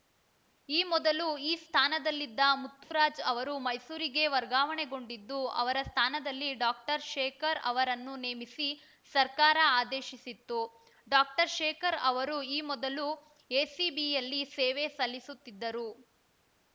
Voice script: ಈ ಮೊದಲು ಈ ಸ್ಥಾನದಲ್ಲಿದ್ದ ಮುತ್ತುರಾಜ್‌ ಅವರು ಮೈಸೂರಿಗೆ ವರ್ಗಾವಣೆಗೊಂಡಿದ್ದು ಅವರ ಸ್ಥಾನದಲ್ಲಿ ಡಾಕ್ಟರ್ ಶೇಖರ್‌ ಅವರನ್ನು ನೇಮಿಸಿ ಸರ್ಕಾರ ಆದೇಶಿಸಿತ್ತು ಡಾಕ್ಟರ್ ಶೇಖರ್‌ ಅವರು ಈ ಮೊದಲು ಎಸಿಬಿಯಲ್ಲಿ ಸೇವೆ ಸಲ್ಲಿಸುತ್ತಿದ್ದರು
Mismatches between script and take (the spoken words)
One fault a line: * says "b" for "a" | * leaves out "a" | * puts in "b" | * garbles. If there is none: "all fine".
all fine